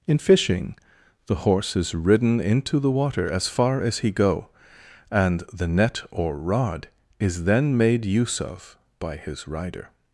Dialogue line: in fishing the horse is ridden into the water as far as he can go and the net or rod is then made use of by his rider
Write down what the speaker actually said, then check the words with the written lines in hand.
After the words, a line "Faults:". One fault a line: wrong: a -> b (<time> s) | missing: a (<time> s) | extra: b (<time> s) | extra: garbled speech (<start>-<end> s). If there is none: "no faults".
in fishing the horse is ridden into the water as far as he go and the net or rod is then made use of by his rider
Faults:
missing: can (4.1 s)